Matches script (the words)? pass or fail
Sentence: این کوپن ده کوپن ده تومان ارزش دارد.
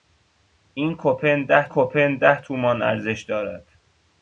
pass